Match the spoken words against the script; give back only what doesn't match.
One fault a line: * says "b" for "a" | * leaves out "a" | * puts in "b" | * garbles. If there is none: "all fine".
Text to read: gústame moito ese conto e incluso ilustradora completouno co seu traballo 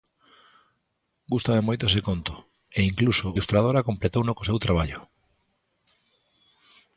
all fine